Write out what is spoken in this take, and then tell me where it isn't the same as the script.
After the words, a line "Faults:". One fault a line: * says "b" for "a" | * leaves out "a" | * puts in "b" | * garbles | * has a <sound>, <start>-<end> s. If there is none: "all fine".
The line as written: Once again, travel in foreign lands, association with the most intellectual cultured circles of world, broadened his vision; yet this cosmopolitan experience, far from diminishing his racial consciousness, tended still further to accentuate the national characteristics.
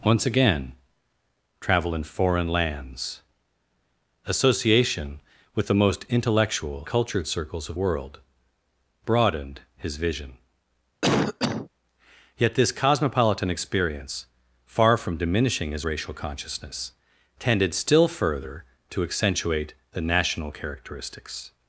Once again, travel in foreign lands, association with the most intellectual cultured circles of world, broadened his vision; yet this cosmopolitan experience, far from diminishing his racial consciousness, tended still further to accentuate the national characteristics.
Faults:
* has a cough, 11.0-11.7 s